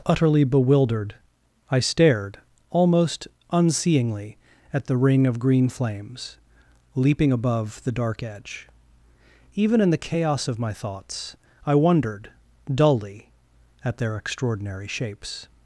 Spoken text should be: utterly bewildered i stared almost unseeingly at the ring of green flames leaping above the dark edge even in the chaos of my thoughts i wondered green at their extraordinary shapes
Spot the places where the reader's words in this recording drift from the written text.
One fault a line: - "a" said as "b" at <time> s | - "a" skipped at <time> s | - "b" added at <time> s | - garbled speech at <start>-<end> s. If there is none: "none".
- "green" said as "dully" at 12.7 s